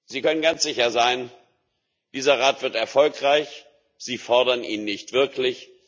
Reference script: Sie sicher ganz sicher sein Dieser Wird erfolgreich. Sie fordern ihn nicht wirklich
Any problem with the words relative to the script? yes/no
yes